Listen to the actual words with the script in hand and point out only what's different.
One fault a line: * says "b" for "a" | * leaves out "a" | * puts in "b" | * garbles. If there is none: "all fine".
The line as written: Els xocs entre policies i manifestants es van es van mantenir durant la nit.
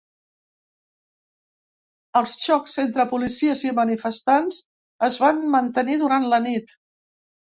* leaves out "es van"